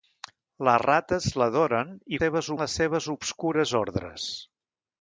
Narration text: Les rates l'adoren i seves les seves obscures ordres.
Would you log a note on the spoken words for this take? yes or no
no